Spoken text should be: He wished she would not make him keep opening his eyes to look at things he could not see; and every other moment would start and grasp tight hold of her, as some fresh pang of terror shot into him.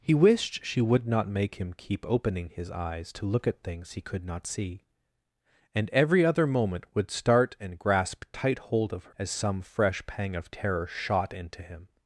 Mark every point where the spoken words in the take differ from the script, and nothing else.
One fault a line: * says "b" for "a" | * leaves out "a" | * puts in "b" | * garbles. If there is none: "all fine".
* leaves out "her"